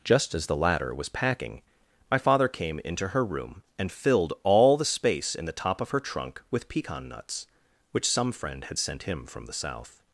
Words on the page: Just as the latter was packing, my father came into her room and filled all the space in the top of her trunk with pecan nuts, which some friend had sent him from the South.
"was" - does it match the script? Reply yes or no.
yes